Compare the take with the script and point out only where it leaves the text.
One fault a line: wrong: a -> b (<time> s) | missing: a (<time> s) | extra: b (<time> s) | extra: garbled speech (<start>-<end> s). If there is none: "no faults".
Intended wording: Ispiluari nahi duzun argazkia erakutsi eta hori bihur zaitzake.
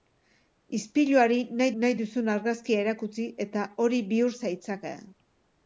extra: nahi (1.8 s)